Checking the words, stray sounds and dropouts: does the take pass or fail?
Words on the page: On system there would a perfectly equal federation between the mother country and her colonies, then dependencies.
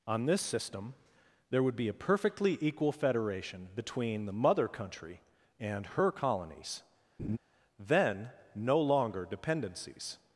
fail